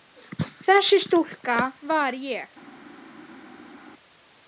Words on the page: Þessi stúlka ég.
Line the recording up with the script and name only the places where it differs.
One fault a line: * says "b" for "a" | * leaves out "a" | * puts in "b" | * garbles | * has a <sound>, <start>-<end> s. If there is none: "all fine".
* puts in "var"